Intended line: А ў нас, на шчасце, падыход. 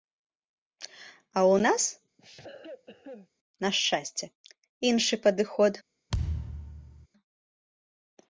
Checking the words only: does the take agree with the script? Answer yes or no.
no